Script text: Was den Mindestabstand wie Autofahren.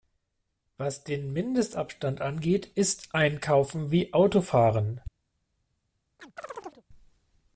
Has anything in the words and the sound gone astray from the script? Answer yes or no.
yes